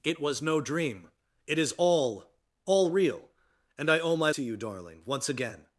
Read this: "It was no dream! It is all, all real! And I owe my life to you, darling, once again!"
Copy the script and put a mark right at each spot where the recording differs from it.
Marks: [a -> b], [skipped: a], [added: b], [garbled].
"It was no dream! It is all, all real! And I owe my [skipped: life] to you, darling, once again!"